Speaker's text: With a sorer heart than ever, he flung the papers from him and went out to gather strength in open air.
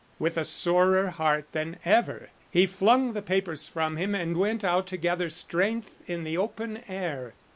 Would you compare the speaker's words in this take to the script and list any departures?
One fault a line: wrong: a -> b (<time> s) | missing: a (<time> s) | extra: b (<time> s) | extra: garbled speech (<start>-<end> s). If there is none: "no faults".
extra: the (6.2 s)